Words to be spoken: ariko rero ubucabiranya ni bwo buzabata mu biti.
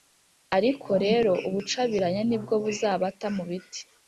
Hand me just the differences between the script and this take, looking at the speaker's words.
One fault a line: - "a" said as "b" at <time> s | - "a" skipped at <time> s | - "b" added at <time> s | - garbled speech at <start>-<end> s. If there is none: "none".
none